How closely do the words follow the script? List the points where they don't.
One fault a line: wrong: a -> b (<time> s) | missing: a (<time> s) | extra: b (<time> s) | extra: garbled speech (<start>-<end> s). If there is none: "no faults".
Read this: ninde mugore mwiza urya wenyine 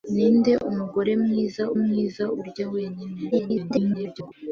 extra: mwiza (1.8 s)
extra: garbled speech (3.3-4.3 s)